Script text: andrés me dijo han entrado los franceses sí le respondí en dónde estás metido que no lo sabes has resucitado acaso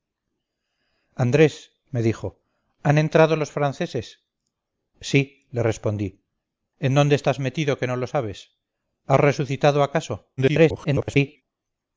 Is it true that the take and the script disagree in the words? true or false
true